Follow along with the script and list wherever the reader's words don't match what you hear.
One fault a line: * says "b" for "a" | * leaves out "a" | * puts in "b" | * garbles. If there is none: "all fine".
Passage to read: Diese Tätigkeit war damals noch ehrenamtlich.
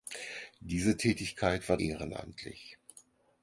* leaves out "damals noch"